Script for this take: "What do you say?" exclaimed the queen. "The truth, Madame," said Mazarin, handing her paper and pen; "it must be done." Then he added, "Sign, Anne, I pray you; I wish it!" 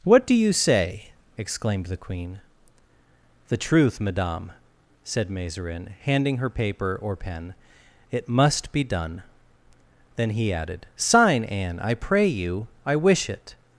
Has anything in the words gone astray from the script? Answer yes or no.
yes